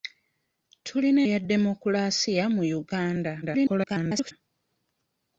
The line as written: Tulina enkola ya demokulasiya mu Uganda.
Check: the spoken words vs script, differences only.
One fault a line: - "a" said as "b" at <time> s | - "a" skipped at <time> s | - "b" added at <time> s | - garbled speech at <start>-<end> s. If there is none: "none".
- "enkola" skipped at 1.2 s
- garbled speech at 3.4-4.3 s